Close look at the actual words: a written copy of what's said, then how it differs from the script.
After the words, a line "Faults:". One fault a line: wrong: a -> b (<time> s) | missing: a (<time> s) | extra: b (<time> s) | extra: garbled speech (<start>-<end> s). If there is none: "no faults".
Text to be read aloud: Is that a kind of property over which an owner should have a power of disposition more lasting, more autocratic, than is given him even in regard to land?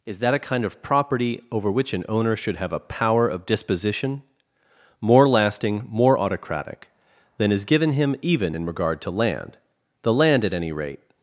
Is that a kind of property over which an owner should have a power of disposition more lasting, more autocratic, than is given him even in regard to land? The land, at any rate
Faults:
extra: The land at any rate (10.0 s)